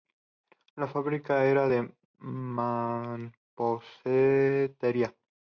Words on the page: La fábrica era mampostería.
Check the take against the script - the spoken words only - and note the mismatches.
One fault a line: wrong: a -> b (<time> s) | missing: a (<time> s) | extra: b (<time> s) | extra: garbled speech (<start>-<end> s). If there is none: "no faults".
extra: de (1.7 s)